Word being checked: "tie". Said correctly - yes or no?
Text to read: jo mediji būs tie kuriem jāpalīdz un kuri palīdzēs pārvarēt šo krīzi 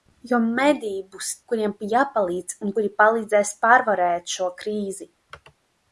no